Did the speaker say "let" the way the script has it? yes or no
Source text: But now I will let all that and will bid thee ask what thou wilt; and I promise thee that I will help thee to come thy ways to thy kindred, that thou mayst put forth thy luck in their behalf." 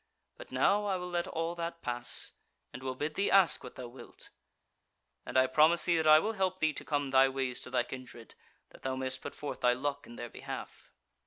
yes